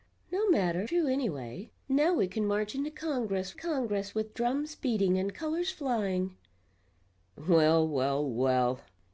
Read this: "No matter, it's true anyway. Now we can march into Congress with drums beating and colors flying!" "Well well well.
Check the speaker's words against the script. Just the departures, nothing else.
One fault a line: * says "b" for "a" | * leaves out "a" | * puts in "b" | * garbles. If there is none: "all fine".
* leaves out "it's"
* puts in "Congress"